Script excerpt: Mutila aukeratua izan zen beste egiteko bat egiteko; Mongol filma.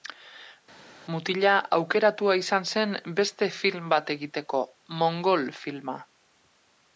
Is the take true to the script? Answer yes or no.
no